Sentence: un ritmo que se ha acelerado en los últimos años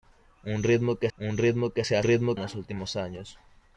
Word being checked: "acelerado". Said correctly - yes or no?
no